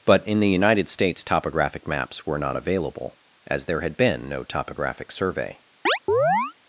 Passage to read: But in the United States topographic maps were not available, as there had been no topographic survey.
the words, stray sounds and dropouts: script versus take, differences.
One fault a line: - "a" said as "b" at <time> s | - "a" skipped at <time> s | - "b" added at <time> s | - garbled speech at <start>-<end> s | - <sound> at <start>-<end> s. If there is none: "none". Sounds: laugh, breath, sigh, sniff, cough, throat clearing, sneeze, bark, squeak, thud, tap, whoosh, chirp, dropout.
- chirp at 5.9-6.5 s